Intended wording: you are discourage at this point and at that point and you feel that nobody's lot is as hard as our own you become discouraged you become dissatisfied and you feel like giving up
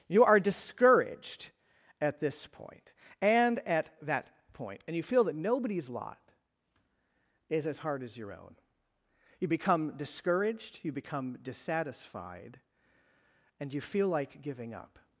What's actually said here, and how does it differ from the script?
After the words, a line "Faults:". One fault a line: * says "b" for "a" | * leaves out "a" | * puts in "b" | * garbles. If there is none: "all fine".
you are discouraged at this point and at that point and you feel that nobody's lot is as hard as your own you become discouraged you become dissatisfied and you feel like giving up
Faults:
* says "discouraged" for "discourage"
* says "your" for "our"